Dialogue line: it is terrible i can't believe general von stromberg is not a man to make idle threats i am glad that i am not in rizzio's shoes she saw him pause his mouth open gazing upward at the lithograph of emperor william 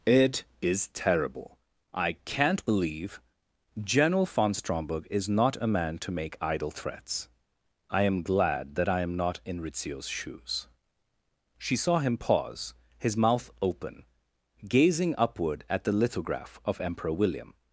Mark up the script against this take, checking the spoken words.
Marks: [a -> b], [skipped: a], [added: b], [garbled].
it is terrible i can't believe general von stromberg is not a man to make idle threats i am glad that i am not in rizzio's shoes she saw him pause his mouth open gazing upward at the lithograph of emperor william